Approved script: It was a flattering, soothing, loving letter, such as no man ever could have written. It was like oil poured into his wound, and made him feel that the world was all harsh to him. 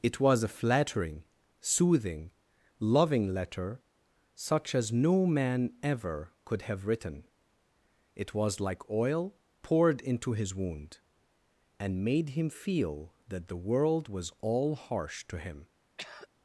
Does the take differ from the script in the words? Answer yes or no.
no